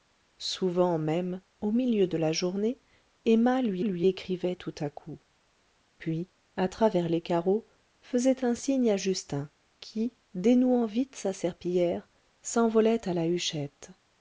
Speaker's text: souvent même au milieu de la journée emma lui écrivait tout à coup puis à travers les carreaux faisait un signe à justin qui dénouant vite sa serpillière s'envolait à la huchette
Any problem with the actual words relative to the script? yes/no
yes